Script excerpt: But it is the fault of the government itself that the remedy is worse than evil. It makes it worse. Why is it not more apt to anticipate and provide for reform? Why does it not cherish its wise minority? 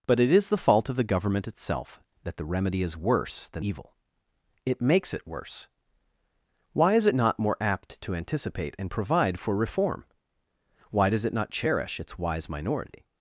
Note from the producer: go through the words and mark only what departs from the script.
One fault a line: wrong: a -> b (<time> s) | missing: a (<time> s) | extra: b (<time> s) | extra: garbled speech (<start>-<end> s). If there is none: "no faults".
no faults